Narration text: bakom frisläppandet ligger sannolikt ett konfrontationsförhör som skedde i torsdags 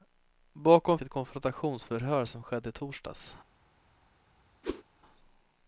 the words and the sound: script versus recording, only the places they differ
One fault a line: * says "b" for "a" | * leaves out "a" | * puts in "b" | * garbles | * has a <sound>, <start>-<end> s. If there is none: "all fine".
* leaves out "frisläppandet ligger sannolikt"
* has a whoosh, 4.6-4.8 s